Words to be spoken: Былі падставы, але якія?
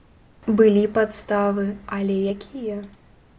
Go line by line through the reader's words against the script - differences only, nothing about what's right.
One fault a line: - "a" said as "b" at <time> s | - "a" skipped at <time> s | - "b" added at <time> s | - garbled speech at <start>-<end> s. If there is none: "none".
none